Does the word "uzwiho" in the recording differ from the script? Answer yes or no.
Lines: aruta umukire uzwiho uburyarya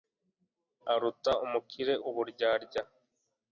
yes